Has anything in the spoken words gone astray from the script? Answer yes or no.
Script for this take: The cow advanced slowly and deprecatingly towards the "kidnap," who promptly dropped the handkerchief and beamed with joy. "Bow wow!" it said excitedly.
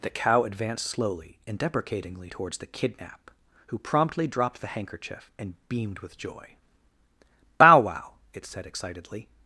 no